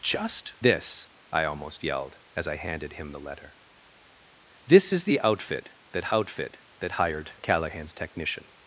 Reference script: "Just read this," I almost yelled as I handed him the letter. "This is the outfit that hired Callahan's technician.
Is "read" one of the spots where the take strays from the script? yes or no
yes